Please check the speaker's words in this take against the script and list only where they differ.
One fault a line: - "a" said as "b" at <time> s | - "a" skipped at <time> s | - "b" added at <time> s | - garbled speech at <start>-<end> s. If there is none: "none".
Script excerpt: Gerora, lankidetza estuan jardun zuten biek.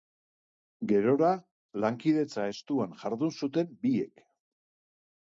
none